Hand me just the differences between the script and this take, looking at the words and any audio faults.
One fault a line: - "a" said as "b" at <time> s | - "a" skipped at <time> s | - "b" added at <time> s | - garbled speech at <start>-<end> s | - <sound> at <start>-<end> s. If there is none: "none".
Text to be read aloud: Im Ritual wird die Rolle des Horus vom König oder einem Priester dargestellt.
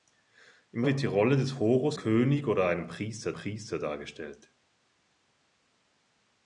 - "Ritual" skipped at 0.8 s
- "vom" skipped at 2.0 s
- "Priester" added at 3.3 s